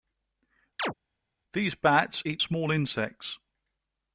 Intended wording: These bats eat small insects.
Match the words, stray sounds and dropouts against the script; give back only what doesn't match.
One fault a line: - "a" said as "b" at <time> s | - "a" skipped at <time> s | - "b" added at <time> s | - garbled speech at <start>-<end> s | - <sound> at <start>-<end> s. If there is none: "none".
- chirp at 0.8-0.9 s